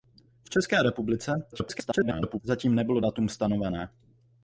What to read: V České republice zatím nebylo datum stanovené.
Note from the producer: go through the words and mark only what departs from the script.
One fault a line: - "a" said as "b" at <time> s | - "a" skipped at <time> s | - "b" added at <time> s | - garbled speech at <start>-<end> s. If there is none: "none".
- garbled speech at 1.5-2.4 s